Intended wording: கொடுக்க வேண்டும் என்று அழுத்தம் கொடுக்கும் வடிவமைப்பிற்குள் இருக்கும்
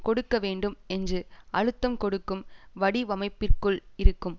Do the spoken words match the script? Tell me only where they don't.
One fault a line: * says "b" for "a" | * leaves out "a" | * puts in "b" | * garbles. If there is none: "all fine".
all fine